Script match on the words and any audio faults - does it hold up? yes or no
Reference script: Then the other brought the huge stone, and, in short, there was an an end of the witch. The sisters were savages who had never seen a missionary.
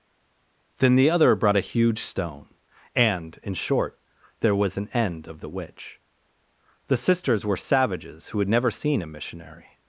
no